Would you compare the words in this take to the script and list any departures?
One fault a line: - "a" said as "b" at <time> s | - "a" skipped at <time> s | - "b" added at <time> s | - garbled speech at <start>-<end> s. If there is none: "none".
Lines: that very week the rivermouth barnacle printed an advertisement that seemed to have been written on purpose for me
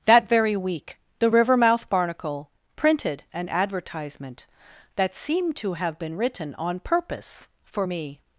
none